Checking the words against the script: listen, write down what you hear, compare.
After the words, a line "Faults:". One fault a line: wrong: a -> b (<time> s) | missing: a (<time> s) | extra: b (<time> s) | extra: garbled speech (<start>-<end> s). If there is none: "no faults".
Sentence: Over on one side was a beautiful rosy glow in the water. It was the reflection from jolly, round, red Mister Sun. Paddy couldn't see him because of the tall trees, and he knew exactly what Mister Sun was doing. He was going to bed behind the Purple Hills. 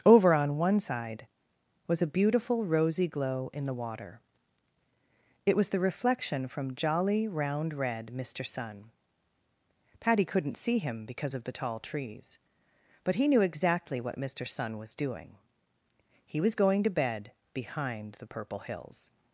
Over on one side was a beautiful rosy glow in the water. It was the reflection from jolly, round, red Mister Sun. Paddy couldn't see him because of the tall trees, but he knew exactly what Mister Sun was doing. He was going to bed behind the Purple Hills.
Faults:
wrong: and -> but (13.0 s)